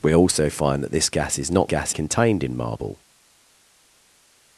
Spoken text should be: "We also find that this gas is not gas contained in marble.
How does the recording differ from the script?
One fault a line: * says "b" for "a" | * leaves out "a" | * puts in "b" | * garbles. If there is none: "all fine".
all fine